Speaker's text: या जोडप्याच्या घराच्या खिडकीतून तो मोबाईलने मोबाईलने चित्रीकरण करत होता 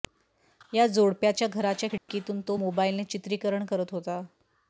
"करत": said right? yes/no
yes